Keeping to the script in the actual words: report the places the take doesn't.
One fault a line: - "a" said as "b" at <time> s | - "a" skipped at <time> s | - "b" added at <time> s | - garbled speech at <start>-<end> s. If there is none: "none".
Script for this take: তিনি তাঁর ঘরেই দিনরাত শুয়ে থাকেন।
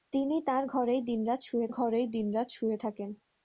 - "ঘরেই দিনরাত শুয়ে" added at 1.7 s